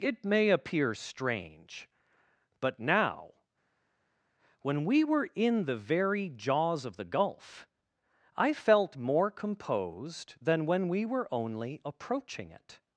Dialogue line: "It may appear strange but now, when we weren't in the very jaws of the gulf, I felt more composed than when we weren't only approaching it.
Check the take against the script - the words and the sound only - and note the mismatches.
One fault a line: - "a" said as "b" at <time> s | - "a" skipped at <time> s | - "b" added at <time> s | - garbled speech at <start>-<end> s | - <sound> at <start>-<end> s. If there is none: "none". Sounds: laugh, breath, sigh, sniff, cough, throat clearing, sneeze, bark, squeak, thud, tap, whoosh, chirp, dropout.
- "weren't" said as "were" at 5.0 s
- "weren't" said as "were" at 11.0 s